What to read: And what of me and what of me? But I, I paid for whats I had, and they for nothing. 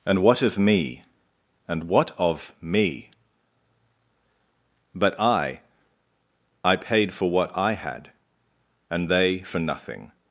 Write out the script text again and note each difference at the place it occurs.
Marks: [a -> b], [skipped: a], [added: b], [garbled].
And what of me and what of me? But I, I paid for [whats -> what] I had, and they for nothing.